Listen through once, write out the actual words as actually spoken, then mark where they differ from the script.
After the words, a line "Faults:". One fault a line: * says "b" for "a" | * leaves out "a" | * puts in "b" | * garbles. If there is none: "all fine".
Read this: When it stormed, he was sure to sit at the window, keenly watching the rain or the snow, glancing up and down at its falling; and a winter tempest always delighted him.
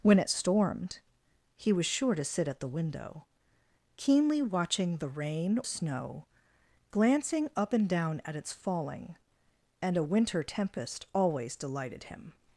When it stormed, he was sure to sit at the window, keenly watching the rain snow, glancing up and down at its falling; and a winter tempest always delighted him.
Faults:
* leaves out "or the"